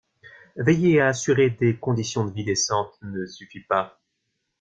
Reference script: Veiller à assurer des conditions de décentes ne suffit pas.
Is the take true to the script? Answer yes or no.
no